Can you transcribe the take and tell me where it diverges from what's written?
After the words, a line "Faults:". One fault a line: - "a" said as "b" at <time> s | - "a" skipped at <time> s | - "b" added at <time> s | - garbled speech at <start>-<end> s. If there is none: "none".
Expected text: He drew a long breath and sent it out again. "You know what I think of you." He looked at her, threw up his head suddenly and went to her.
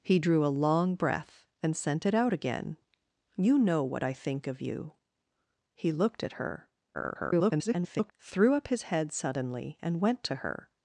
He drew a long breath and sent it out again. "You know what I think of you." He looked at her, [garbled] threw up his head suddenly and went to her.
Faults:
- garbled speech at 6.9-8.1 s